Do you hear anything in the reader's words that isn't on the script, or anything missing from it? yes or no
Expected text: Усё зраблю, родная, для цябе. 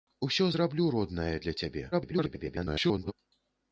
yes